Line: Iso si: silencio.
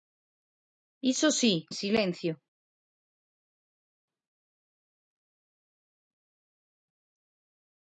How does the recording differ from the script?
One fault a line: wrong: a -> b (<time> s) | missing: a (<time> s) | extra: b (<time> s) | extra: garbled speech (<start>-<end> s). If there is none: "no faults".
no faults